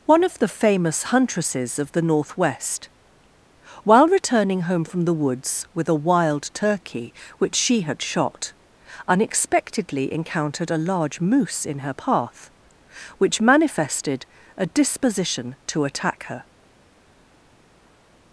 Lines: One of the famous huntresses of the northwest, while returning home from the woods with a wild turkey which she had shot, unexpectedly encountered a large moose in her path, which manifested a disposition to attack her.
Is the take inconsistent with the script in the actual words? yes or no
no